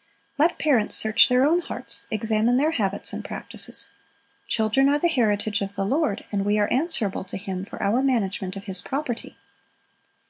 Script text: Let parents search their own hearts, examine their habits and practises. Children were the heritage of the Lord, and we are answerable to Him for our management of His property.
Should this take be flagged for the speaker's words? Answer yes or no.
yes